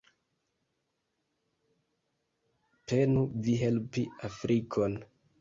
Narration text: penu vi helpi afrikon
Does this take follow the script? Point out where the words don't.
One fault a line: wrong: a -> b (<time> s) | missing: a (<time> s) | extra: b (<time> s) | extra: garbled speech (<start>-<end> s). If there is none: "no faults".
no faults